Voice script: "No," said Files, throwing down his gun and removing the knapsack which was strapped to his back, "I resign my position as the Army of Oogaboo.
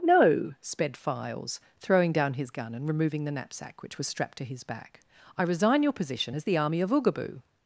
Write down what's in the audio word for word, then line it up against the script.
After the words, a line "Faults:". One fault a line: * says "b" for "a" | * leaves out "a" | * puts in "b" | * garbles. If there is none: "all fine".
"No," sped Files, throwing down his gun and removing the knapsack which was strapped to his back, "I resign your position as the Army of Oogaboo.
Faults:
* says "sped" for "said"
* says "your" for "my"